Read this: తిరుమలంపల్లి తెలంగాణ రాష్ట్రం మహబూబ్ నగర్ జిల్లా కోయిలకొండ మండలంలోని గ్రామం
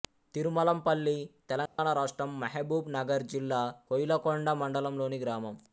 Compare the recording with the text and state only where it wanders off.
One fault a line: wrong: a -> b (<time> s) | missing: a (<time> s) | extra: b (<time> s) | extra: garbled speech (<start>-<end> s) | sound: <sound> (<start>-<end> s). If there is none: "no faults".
sound: dropout (1.7-1.8 s)